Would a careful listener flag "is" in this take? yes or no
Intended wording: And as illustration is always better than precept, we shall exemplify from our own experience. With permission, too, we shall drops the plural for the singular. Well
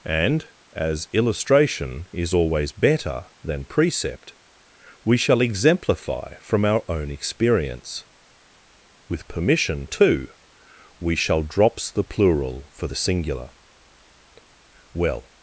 no